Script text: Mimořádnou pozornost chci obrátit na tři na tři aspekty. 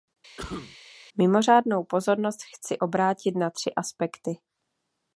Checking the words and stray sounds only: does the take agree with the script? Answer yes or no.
no